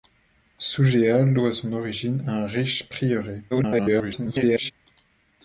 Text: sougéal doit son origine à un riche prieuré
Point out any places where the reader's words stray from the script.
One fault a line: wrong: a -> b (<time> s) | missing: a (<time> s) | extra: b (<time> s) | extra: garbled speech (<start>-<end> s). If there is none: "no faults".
extra: garbled speech (3.5-4.7 s)